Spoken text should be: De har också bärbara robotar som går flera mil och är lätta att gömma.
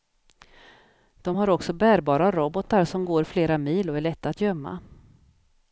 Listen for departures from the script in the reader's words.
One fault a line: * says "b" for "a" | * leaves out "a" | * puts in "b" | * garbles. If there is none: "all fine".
all fine